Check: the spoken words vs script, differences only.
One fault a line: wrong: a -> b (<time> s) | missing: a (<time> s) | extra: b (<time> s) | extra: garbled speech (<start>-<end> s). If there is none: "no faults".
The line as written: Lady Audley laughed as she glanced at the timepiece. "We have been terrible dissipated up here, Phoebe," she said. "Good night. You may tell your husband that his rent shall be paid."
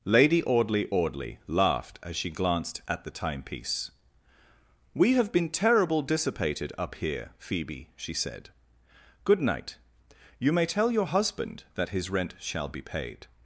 extra: Audley (0.9 s)